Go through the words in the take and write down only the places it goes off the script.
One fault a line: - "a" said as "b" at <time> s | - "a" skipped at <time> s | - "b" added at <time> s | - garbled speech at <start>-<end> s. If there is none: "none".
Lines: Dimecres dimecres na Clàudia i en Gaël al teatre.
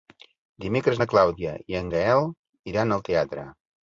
- "dimecres" skipped at 1.0 s
- "iran" added at 2.7 s